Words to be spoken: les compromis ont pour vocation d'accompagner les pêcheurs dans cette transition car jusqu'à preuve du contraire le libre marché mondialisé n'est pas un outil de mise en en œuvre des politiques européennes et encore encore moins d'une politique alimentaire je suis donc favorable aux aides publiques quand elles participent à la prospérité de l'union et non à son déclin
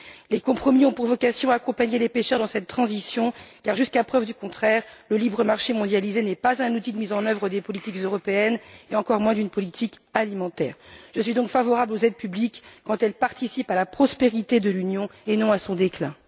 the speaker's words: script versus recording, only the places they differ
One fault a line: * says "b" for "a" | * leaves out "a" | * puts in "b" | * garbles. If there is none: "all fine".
* leaves out "en"
* leaves out "encore"